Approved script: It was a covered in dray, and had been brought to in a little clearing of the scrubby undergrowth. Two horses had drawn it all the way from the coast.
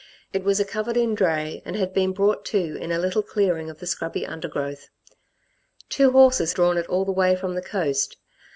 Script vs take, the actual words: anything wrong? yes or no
yes